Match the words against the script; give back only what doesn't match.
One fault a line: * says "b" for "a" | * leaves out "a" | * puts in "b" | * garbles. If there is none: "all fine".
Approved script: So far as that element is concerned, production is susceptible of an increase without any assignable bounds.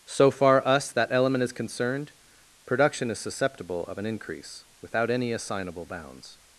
* says "us" for "as"